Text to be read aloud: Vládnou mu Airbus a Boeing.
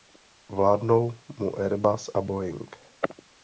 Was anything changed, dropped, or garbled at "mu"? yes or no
no